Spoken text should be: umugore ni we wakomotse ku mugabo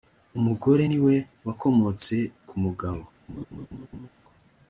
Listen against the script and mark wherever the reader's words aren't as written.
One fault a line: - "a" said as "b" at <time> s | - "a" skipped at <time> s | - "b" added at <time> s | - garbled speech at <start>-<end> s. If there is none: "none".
none